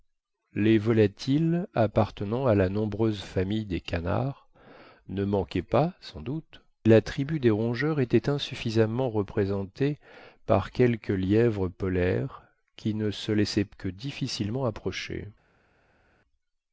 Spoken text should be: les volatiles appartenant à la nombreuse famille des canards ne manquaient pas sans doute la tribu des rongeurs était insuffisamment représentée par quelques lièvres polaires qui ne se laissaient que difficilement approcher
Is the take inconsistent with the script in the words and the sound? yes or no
no